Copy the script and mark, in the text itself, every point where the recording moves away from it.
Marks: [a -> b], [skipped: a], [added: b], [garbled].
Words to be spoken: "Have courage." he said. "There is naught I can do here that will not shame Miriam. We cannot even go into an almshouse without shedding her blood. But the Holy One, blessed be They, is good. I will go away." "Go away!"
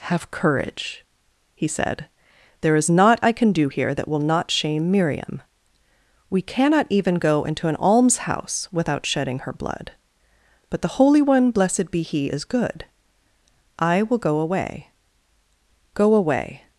"Have courage." he said. "There is naught I can do here that will not shame Miriam. We cannot even go into an almshouse without shedding her blood. But the Holy One, blessed be [They, -> He] is good. I will go away." "Go away!"